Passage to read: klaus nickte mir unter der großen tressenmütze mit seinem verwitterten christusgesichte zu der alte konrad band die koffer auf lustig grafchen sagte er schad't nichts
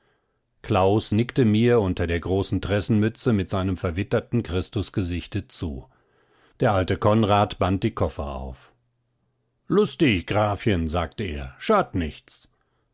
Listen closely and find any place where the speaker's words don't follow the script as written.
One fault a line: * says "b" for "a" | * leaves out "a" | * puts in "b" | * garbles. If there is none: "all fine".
all fine